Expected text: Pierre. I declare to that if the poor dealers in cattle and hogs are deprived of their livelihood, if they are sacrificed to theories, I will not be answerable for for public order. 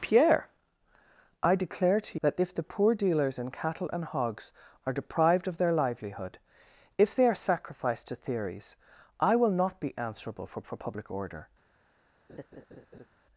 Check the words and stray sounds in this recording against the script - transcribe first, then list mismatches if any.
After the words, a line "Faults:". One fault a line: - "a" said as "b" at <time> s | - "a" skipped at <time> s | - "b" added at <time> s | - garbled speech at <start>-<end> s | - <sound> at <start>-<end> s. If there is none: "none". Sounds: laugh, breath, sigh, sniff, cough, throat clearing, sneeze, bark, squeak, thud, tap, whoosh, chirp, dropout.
Pierre. I declare to that if the poor dealers in cattle and hogs are deprived of their livelihood, if they are sacrificed to theories, I will not be answerable for for public order.
Faults:
- laugh at 12.3-13.1 s